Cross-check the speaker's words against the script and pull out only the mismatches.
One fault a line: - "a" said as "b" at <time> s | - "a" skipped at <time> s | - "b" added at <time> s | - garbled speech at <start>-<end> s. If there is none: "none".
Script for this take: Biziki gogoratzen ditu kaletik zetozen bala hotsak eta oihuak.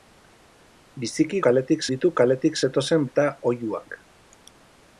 - "gogoratzen" said as "kaletik" at 1.5 s
- "bala hotsak" skipped at 3.1 s